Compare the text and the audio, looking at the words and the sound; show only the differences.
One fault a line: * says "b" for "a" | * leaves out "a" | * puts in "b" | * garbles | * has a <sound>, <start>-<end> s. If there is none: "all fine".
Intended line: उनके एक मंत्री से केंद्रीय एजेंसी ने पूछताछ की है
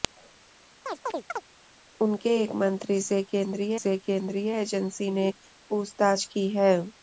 * has a chirp, 0.9-1.4 s
* puts in "से केंद्रीय"